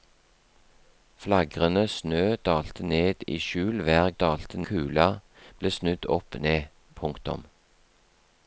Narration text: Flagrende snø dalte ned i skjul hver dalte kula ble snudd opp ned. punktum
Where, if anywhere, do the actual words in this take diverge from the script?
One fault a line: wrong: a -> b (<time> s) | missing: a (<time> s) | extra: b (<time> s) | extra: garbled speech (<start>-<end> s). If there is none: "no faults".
no faults